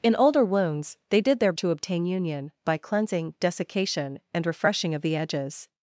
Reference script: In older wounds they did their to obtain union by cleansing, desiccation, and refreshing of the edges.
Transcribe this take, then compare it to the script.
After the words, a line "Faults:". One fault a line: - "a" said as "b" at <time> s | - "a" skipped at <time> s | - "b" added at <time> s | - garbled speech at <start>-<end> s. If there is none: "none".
In older wounds they did their to obtain union by cleansing, desiccation, and refreshing of the edges.
Faults:
none